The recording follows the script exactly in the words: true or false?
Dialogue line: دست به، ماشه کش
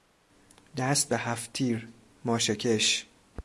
false